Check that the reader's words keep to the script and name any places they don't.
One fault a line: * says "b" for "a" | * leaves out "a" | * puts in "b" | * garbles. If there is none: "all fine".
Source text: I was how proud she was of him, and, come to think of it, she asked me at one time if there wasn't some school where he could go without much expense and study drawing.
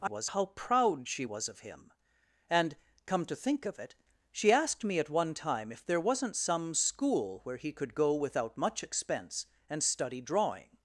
all fine